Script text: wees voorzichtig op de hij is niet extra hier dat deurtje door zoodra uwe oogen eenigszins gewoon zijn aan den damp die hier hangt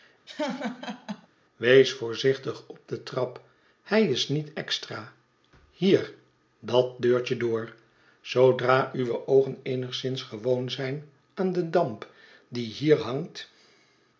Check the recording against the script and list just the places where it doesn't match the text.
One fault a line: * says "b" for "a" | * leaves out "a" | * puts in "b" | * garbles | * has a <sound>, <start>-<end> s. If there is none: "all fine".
* has a laugh, 0.3-1.3 s
* puts in "trap"